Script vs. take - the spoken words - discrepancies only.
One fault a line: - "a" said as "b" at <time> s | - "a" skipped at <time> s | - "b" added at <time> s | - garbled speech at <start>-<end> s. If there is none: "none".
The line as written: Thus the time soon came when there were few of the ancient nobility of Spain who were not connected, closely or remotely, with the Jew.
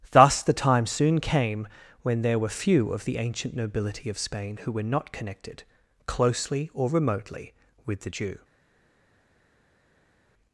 none